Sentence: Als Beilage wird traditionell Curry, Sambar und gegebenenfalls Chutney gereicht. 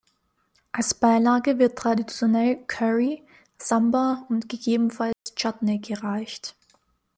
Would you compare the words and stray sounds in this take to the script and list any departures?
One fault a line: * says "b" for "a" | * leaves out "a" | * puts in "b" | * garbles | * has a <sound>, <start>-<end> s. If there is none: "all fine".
* has a dropout, 5.1-5.3 s